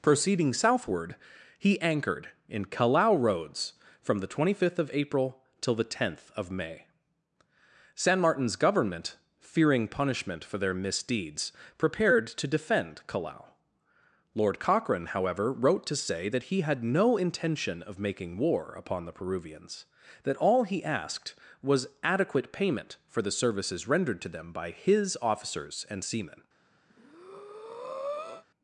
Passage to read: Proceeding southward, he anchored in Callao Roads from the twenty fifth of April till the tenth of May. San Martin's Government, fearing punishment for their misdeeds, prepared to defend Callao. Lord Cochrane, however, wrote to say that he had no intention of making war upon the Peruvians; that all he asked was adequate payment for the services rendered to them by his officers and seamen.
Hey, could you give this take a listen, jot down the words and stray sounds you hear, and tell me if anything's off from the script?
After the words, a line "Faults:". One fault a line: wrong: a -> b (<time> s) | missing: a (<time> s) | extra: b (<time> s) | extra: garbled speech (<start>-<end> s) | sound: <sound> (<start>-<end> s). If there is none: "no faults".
Proceeding southward, he anchored in Callao Roads from the twenty fifth of April till the tenth of May. San Martin's Government, fearing punishment for their misdeeds, prepared to defend Callao. Lord Cochrane, however, wrote to say that he had no intention of making war upon the Peruvians; that all he asked was adequate payment for the services rendered to them by his officers and seamen.
Faults:
sound: breath (26.9-28.4 s)